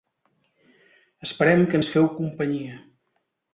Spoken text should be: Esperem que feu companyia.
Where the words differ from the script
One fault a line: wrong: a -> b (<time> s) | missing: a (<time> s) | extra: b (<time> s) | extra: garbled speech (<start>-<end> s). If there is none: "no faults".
extra: ens (1.8 s)